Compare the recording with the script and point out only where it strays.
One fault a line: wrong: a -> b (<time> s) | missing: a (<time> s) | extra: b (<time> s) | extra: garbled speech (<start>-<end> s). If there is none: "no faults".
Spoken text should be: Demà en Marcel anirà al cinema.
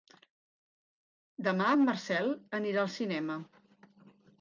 no faults